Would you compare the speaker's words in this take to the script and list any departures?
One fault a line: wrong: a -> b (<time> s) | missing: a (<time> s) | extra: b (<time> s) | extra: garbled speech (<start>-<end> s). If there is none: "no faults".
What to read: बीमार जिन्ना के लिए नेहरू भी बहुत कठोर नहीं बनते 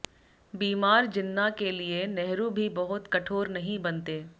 no faults